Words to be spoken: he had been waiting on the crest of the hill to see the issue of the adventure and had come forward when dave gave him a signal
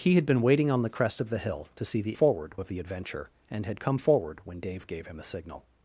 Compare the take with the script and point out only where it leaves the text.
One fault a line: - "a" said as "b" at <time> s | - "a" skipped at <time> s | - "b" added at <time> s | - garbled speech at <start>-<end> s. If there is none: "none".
- "issue" said as "forward" at 2.1 s